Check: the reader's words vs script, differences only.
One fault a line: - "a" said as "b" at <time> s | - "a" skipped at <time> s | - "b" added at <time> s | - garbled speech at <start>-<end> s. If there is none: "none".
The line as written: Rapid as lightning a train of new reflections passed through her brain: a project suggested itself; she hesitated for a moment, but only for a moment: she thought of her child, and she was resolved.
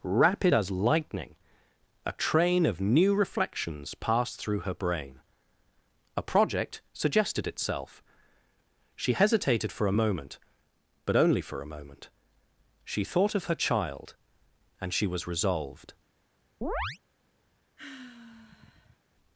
none